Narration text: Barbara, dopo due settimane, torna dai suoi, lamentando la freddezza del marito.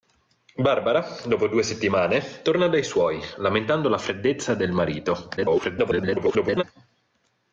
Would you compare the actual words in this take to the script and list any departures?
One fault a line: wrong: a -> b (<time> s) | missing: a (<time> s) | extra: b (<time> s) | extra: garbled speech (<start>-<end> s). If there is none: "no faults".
extra: garbled speech (5.4-6.6 s)